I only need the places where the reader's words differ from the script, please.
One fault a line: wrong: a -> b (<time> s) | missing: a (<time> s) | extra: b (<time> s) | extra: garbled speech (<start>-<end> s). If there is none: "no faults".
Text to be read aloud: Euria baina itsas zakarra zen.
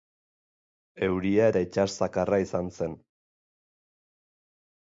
wrong: baina -> eta (1.5 s)
extra: izan (2.5 s)